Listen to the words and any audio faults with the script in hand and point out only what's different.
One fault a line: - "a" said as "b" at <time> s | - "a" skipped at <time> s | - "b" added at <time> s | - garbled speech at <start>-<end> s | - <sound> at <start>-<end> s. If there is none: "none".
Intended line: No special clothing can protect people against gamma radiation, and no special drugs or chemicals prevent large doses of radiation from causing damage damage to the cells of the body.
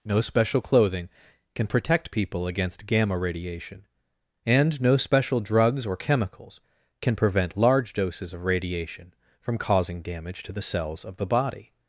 - "can" added at 7.0 s
- "damage" skipped at 10.4 s